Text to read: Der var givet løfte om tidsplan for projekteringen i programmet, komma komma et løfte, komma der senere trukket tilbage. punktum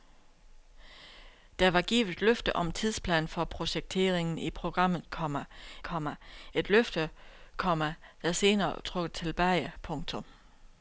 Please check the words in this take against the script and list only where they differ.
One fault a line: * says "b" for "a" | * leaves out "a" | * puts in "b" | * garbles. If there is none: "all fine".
all fine